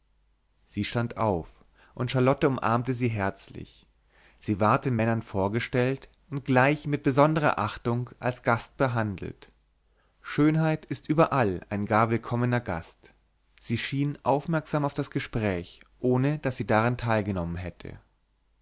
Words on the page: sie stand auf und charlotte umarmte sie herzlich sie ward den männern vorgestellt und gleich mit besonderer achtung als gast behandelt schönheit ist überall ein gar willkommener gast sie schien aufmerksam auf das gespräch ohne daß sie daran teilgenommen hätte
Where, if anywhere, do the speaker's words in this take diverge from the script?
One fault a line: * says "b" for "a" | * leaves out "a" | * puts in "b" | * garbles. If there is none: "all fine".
all fine